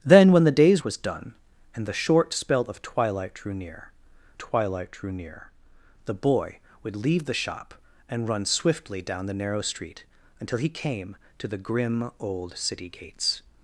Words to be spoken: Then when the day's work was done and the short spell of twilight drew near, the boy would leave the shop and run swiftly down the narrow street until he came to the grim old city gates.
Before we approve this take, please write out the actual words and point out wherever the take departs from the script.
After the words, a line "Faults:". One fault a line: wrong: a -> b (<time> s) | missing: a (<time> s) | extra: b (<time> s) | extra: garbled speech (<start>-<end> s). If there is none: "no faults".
Then when the day's was done and the short spell of twilight drew near twilight drew near, the boy would leave the shop and run swiftly down the narrow street until he came to the grim old city gates.
Faults:
missing: work (0.8 s)
extra: twilight drew near (4.4 s)